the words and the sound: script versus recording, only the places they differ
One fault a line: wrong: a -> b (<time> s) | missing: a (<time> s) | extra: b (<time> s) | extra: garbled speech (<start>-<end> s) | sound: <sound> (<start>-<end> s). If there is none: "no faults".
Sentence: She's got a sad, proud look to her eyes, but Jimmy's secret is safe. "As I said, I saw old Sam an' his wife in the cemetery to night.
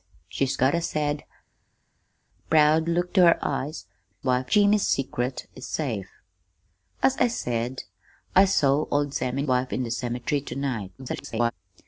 wrong: but -> wife (4.2 s)
missing: his (9.4 s)
extra: garbled speech (11.0-11.5 s)